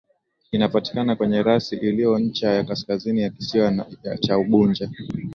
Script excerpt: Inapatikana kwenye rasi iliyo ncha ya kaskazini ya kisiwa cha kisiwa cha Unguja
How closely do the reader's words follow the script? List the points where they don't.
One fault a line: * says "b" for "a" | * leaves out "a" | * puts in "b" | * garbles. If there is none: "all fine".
* leaves out "kisiwa cha"